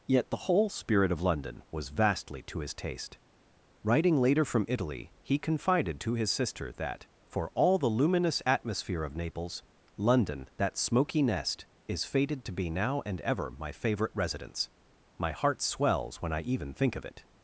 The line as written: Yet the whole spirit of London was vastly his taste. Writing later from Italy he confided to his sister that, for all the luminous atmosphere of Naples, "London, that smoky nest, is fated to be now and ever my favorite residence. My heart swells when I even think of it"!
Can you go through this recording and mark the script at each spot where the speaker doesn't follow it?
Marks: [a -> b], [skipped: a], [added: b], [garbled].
Yet the whole spirit of London was vastly [added: to] his taste. Writing later from Italy he confided to his sister that, for all the luminous atmosphere of Naples, "London, that smoky nest, is fated to be now and ever my favorite residence. My heart swells when I even think of it"!